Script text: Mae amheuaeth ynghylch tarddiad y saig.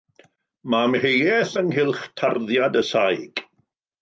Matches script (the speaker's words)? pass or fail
pass